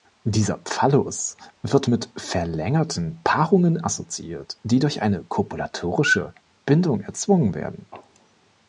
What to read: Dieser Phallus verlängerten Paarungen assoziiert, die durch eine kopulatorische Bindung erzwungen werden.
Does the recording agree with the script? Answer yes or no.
no